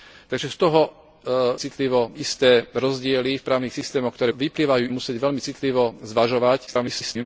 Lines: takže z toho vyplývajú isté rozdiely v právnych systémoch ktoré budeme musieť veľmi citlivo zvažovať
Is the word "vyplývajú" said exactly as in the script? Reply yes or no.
no